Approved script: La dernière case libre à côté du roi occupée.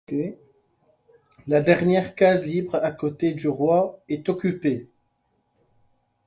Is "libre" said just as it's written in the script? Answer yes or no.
yes